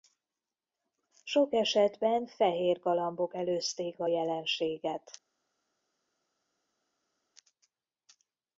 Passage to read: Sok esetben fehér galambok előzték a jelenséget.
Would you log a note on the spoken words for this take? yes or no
no